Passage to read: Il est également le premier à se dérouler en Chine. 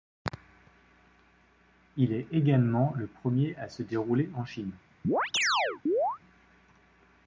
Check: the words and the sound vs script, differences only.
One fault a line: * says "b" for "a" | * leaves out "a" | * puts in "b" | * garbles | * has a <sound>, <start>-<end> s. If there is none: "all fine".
* has a chirp, 5.0-6.2 s